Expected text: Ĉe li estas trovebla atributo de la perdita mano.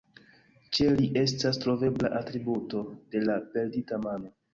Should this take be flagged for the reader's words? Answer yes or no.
no